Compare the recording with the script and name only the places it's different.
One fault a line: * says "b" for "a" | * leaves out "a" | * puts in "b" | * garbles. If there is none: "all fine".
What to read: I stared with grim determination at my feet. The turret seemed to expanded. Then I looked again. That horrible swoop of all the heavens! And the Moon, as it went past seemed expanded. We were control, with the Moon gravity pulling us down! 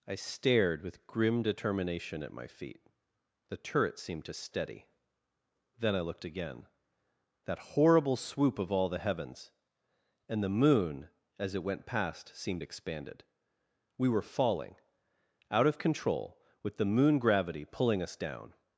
* says "steady" for "expanded"
* puts in "falling Out of"